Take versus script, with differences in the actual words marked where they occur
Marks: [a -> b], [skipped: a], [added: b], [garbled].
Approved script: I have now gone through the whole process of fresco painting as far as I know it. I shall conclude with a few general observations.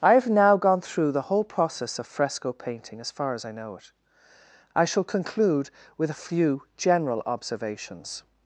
I have now gone through the whole process of fresco painting as far as I know it. I shall conclude with a few general observations.